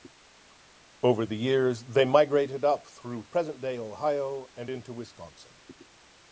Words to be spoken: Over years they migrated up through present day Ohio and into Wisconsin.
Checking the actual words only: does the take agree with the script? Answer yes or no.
no